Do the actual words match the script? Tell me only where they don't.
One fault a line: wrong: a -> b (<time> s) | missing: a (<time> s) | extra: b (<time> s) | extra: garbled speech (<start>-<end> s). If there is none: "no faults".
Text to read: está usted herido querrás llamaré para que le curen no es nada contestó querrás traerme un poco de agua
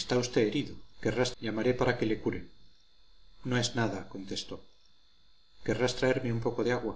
no faults